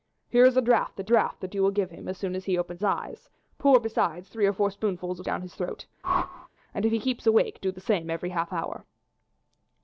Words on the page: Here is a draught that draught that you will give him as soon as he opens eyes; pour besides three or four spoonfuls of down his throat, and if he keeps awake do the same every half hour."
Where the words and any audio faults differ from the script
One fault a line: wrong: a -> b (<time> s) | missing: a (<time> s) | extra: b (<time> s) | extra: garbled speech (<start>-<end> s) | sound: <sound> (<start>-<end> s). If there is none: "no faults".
sound: whoosh (6.0-6.5 s)